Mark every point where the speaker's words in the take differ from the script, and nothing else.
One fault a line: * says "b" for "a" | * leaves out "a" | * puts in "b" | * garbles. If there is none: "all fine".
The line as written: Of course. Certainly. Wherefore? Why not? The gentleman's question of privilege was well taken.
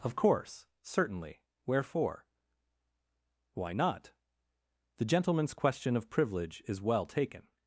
* says "is" for "was"